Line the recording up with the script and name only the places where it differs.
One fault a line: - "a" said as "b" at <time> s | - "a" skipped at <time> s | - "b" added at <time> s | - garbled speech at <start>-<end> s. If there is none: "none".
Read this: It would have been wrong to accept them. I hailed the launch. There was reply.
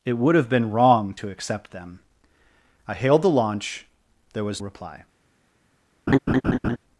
none